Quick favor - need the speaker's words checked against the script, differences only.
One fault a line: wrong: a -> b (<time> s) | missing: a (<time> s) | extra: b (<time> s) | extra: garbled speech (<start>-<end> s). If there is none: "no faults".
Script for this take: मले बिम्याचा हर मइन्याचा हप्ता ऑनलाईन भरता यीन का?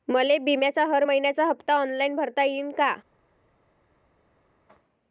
no faults